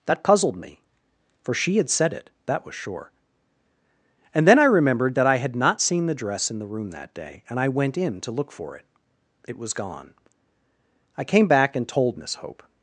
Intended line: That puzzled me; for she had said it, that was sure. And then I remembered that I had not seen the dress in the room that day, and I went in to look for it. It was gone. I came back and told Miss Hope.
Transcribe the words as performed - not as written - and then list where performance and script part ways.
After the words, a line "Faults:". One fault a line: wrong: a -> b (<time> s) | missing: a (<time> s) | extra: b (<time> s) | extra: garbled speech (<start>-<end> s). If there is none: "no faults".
That puzzled me; for she had said it, that was sure. And then I remembered that I had not seen the dress in the room that day, and I went in to look for it. It was gone. I came back and told Miss Hope.
Faults:
no faults